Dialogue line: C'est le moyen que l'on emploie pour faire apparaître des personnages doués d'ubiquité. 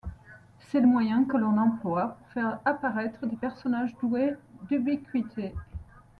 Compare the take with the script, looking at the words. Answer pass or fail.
pass